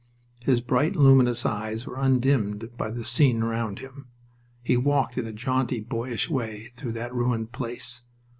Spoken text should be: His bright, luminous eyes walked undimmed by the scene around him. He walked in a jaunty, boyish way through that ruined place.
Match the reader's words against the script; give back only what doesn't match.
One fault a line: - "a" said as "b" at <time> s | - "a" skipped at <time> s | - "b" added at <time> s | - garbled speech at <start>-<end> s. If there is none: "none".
- "walked" said as "were" at 1.9 s